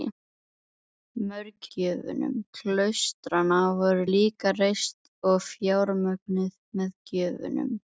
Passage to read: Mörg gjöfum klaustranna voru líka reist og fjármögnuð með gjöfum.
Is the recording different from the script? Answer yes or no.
no